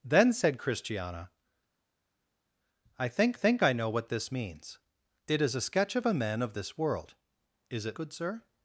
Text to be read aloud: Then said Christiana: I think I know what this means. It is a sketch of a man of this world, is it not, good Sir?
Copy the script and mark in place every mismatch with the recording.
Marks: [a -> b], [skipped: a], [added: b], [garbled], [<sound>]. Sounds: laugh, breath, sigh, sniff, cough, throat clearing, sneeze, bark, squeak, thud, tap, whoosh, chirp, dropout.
Then said Christiana: I think [added: think] I know what this means. It is a sketch of a man of this world, is it [skipped: not,] good Sir?